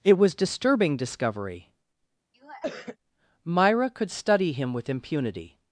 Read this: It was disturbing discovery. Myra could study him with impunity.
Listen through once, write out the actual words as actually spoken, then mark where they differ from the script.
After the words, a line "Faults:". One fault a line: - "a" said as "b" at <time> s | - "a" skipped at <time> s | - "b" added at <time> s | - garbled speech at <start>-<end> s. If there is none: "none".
It was disturbing discovery. Myra could study him with impunity.
Faults:
none